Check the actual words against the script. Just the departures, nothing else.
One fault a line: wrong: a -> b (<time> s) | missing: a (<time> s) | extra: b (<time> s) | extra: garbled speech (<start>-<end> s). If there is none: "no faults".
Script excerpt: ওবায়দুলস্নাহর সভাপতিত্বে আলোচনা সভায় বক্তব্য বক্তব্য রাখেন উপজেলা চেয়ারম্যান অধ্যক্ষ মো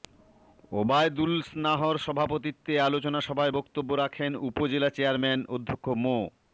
missing: বক্তব্য (3.9 s)